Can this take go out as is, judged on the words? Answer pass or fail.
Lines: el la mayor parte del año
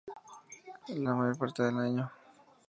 pass